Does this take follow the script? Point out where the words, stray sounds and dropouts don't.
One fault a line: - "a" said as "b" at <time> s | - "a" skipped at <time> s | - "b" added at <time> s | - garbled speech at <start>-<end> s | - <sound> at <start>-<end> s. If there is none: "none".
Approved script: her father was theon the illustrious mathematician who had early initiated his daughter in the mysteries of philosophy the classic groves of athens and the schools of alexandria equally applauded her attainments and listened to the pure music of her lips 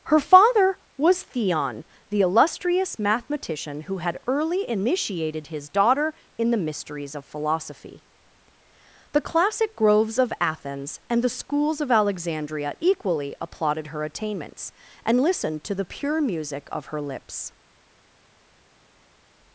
none